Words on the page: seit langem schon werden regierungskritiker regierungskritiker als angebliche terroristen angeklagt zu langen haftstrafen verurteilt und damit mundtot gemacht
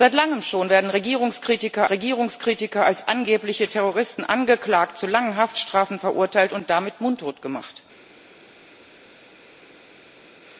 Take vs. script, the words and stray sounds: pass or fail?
pass